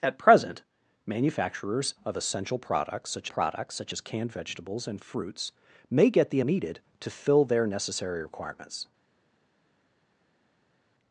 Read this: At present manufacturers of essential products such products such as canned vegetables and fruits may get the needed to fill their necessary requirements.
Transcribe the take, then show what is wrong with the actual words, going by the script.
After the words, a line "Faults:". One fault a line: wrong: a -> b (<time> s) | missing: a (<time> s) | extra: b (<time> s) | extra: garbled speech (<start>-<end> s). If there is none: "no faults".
At present manufacturers of essential products such products such as canned vegetables and fruits may get the needed to fill their necessary requirements.
Faults:
no faults